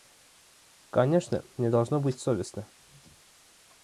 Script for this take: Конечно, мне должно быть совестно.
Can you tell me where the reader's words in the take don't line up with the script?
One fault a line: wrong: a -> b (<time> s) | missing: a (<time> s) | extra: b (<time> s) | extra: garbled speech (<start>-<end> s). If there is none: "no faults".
no faults